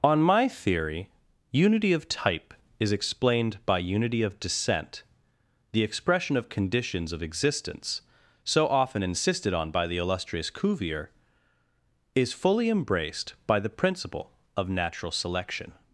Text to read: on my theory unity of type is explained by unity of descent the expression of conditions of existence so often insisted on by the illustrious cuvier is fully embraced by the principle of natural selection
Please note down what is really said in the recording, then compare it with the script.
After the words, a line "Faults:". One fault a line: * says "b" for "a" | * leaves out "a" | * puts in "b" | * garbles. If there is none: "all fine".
on my theory unity of type is explained by unity of descent the expression of conditions of existence so often insisted on by the illustrious cuvier is fully embraced by the principle of natural selection
Faults:
all fine